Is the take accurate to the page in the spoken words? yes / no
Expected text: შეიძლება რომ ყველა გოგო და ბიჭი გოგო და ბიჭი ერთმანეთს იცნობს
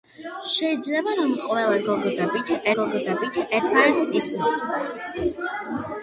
yes